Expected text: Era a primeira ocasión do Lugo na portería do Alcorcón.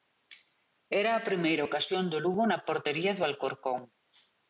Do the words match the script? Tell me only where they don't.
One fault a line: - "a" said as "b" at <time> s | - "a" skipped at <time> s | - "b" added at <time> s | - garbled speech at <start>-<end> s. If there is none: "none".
none